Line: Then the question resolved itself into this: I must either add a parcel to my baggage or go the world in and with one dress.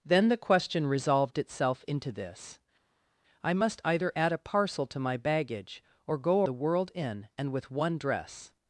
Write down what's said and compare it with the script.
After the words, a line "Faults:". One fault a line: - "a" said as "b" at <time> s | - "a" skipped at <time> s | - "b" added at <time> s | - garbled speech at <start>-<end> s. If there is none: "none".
Then the question resolved itself into this: I must either add a parcel to my baggage or go the world in and with one dress.
Faults:
none